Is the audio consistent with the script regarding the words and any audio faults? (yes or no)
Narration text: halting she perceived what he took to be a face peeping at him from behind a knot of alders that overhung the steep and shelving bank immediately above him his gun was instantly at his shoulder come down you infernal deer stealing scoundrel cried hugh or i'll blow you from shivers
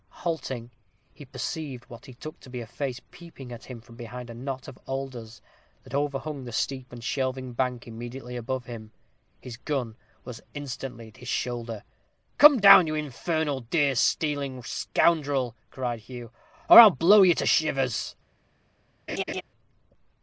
no